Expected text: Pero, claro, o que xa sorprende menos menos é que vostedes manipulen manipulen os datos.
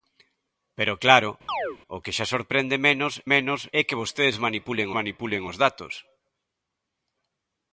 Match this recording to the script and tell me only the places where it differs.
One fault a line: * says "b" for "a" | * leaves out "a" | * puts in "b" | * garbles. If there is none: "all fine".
all fine